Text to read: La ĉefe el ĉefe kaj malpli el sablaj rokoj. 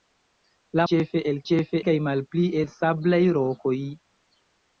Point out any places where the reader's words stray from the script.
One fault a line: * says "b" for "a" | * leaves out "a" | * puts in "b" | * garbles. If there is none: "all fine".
all fine